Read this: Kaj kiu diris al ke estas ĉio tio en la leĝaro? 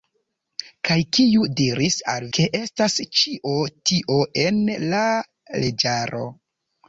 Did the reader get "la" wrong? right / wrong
right